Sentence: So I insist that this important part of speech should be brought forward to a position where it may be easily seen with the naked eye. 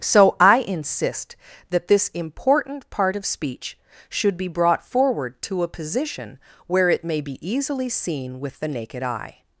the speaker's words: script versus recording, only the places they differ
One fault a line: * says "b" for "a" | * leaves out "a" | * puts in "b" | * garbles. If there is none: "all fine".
all fine